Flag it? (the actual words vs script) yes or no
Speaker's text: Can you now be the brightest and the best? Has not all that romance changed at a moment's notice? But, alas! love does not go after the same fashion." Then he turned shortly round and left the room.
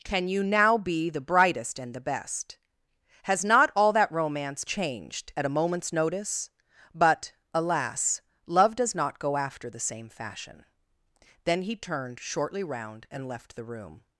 no